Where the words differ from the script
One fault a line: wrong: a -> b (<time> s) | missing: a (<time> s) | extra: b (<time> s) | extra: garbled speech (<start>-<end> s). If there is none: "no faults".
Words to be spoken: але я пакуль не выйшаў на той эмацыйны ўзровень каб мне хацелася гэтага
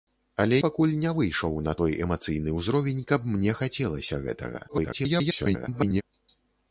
missing: я (0.6 s)
extra: garbled speech (4.7-6.0 s)